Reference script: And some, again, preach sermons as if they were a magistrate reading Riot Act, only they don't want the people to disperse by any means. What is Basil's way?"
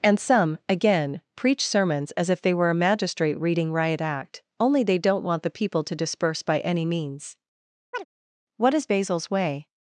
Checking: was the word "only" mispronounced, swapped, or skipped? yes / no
no